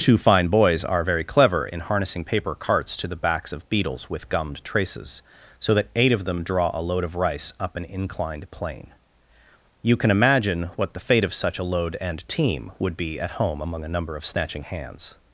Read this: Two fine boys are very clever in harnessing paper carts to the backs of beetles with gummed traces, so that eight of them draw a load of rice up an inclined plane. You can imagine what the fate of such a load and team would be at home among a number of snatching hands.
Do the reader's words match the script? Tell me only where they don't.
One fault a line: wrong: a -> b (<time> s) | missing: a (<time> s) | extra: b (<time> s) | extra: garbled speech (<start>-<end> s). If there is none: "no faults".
no faults